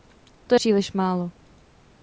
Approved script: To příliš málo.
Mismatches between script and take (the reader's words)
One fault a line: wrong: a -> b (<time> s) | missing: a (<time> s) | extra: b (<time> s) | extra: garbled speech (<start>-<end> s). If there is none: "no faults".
no faults